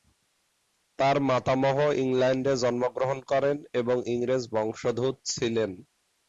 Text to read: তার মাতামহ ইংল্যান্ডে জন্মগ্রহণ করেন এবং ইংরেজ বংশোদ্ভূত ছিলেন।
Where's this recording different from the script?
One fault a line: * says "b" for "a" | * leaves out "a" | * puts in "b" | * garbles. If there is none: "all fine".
all fine